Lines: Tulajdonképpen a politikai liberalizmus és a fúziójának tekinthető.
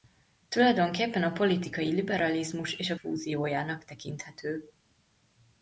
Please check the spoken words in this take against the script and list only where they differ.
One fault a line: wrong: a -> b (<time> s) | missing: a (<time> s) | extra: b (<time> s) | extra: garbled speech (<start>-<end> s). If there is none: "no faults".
no faults